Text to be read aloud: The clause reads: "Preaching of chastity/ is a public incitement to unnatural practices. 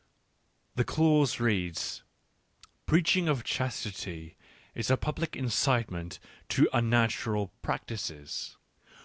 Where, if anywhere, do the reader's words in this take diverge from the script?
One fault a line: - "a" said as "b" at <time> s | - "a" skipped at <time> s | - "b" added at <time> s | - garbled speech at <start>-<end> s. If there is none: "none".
none